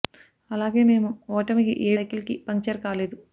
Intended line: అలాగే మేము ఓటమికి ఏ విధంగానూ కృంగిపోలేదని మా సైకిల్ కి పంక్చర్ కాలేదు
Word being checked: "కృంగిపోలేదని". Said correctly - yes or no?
no